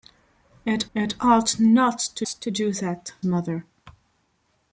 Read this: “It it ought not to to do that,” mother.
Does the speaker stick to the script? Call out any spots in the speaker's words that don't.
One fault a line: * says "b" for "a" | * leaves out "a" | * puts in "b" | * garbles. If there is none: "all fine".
all fine